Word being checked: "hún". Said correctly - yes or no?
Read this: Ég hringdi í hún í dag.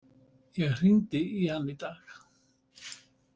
no